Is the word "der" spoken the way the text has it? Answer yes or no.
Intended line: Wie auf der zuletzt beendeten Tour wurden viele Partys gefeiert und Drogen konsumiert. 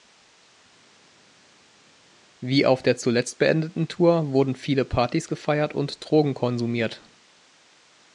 yes